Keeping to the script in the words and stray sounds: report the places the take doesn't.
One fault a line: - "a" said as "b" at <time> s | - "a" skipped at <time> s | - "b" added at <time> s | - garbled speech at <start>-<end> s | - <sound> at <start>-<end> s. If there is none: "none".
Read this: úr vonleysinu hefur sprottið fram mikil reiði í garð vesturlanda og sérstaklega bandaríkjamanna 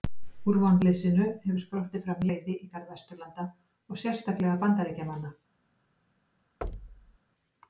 - "mikil" skipped at 2.2 s
- thud at 6.6-7.2 s